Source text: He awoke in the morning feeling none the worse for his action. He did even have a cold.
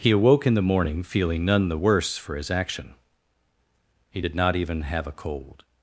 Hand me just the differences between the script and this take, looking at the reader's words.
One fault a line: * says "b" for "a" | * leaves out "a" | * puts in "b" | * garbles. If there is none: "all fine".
* puts in "not"